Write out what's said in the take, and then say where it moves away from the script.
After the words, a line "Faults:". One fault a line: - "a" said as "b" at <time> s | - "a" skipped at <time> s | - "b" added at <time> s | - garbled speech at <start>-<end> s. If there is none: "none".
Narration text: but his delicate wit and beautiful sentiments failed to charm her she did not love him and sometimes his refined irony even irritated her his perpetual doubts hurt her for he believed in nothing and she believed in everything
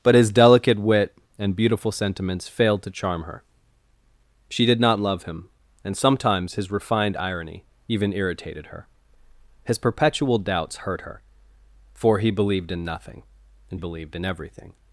but his delicate wit and beautiful sentiments failed to charm her she did not love him and sometimes his refined irony even irritated her his perpetual doubts hurt her for he believed in nothing and believed in everything
Faults:
- "she" skipped at 13.8 s